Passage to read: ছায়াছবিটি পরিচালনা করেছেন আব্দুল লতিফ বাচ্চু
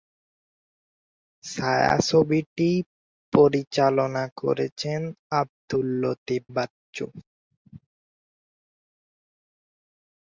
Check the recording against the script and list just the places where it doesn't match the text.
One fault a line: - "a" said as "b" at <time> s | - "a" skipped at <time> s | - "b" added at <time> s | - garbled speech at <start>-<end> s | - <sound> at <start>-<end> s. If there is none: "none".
none